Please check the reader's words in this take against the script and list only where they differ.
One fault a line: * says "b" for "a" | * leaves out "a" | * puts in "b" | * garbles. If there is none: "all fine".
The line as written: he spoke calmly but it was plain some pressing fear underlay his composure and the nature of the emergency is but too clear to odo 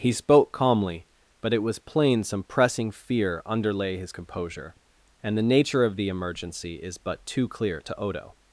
all fine